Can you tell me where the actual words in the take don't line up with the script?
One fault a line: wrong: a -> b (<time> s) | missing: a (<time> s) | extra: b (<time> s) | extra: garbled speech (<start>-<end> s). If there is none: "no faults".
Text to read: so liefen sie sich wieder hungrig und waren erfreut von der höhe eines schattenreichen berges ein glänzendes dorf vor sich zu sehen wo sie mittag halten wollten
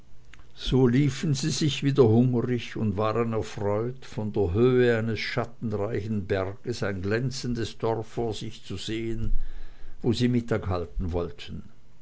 no faults